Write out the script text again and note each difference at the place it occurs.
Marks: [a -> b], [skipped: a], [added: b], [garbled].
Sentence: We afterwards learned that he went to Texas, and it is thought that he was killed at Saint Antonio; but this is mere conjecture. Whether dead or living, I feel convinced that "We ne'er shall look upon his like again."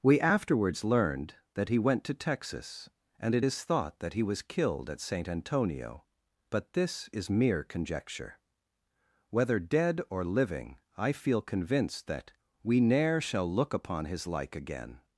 We afterwards learned that he went to Texas, and it is thought that he was killed at Saint Antonio; but this is mere conjecture. Whether dead or living, I feel convinced that "We ne'er shall look upon his like again."